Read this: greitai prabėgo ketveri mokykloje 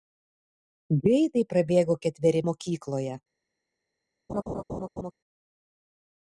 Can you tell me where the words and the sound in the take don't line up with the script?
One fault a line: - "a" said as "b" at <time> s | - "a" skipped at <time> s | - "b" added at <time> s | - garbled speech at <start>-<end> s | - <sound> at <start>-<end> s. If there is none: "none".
- laugh at 4.3-5.1 s